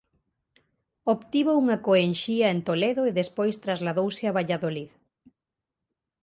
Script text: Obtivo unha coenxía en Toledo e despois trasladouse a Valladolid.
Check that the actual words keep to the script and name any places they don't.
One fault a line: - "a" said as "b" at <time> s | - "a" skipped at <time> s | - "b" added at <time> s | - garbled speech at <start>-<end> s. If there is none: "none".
none